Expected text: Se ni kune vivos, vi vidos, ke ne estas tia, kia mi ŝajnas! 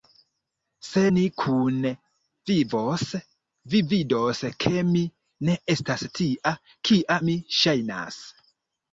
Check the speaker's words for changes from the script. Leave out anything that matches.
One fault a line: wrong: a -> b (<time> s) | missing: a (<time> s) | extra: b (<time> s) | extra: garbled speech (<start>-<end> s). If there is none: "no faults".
extra: mi (4.9 s)